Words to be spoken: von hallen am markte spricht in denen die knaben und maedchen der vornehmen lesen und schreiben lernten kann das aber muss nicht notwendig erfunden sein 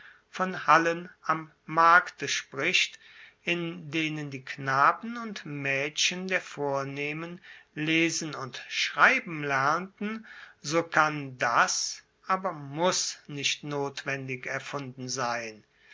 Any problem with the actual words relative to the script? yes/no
yes